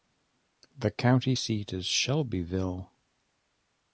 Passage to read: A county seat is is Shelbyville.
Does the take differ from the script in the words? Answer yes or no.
yes